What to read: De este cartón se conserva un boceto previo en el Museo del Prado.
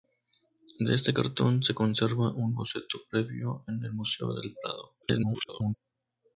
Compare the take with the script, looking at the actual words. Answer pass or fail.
fail